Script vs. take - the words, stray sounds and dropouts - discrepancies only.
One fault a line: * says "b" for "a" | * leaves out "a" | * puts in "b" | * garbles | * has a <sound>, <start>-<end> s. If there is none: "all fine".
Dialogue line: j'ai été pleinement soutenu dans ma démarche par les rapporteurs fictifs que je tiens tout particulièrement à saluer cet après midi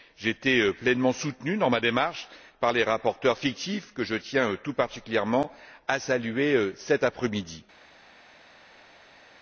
all fine